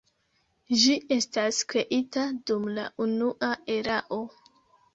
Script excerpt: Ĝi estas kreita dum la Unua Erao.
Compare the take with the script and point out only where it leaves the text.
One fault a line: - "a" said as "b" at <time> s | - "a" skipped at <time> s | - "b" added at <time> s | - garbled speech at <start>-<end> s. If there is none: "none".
none